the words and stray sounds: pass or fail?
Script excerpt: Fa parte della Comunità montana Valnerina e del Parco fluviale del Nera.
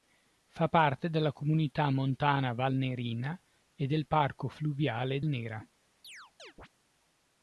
fail